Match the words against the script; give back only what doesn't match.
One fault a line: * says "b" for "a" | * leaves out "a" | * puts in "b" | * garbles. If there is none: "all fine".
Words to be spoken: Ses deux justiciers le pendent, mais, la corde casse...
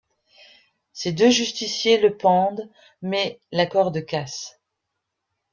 all fine